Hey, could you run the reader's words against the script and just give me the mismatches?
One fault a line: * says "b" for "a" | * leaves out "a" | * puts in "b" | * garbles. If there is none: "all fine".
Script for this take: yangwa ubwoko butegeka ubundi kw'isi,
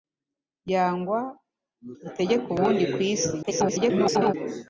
* leaves out "ubwoko"
* garbles